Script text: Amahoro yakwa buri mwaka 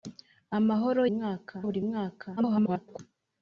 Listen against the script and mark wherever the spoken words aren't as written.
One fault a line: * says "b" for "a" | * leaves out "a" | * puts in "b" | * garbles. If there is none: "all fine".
* says "mwaka" for "yakwa"
* garbles